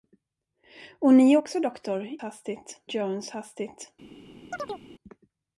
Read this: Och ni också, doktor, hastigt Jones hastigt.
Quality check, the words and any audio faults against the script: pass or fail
fail